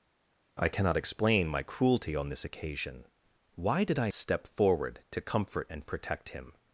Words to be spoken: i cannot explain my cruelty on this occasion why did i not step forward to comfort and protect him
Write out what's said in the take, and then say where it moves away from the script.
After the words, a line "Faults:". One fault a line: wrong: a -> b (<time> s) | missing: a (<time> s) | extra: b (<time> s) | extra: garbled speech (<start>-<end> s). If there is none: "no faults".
i cannot explain my cruelty on this occasion why did i step forward to comfort and protect him
Faults:
missing: not (4.1 s)